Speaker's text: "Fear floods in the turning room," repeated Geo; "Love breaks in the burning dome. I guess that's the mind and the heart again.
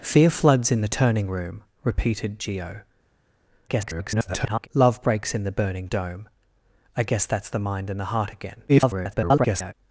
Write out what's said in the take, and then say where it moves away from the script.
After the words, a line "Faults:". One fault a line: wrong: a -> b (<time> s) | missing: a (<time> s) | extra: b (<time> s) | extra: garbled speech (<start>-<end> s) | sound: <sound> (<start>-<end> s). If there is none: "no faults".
"Fear floods in the turning room," repeated Geo; [garbled] "Love breaks in the burning dome. I guess that's the mind and the heart again. [garbled]
Faults:
extra: garbled speech (3.7-4.7 s)
extra: garbled speech (8.7-9.7 s)